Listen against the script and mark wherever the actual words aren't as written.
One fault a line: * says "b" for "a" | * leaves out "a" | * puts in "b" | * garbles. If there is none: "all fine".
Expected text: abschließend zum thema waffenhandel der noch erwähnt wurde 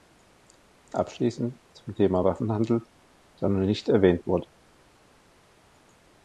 * puts in "nicht"